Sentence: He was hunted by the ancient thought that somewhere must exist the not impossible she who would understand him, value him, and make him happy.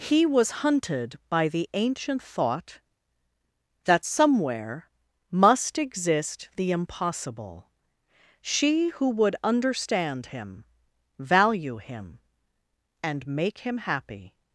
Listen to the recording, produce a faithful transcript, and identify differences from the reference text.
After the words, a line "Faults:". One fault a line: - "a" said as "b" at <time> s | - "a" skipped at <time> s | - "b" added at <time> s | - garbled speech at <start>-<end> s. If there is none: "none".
He was hunted by the ancient thought that somewhere must exist the impossible she who would understand him, value him, and make him happy.
Faults:
- "not" skipped at 6.7 s